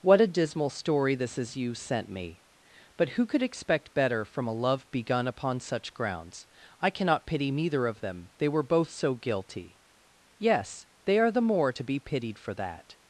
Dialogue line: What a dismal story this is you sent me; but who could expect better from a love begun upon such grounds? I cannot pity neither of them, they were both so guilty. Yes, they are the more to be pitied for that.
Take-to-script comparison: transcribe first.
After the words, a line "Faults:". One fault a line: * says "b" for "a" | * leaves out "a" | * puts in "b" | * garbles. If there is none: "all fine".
What a dismal story this is you sent me; but who could expect better from a love begun upon such grounds? I cannot pity neither of them, they were both so guilty. Yes, they are the more to be pitied for that.
Faults:
all fine